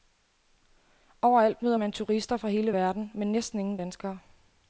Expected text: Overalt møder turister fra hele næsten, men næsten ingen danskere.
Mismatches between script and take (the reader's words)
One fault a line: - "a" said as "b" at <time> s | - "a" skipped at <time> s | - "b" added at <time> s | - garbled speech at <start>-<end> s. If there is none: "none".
- "man" added at 1.7 s
- "næsten" said as "verden" at 2.7 s